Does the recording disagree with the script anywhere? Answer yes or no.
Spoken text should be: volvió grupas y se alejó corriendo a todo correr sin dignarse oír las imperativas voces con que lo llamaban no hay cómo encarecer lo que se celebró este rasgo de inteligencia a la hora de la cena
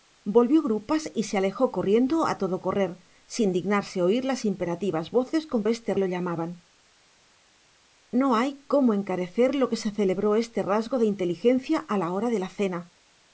yes